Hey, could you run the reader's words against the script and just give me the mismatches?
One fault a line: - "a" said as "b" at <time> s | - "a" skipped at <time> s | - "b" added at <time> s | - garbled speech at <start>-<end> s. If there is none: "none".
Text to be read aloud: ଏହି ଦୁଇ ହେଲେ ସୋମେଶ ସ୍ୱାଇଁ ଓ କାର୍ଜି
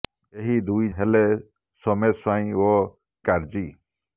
none